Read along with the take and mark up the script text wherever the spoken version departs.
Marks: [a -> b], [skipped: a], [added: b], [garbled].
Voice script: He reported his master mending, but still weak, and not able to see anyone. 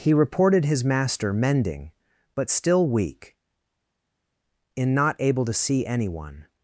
He reported his master mending, but still weak, [and -> in] not able to see anyone.